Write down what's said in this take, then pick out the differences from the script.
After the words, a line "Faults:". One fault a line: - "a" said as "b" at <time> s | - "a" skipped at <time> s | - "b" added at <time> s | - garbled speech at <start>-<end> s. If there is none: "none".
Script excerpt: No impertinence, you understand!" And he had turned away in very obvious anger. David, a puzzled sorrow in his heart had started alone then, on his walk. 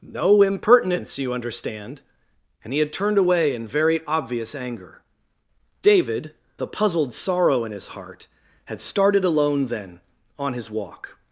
No impertinence, you understand!" And he had turned away in very obvious anger. David, a puzzled sorrow in his heart had started alone then, on his walk.
Faults:
none